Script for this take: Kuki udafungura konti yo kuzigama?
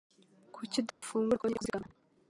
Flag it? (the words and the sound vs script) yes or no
yes